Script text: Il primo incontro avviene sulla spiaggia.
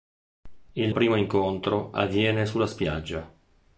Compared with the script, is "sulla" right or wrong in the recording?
right